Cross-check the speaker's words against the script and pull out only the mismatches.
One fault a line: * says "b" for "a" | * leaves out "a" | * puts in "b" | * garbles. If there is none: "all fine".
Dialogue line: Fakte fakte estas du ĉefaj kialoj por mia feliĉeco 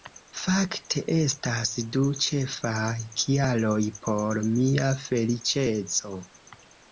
* leaves out "fakte"